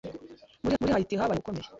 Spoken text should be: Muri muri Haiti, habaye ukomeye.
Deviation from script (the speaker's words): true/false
false